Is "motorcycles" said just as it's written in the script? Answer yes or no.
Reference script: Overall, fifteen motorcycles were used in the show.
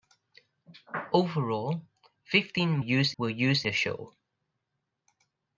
no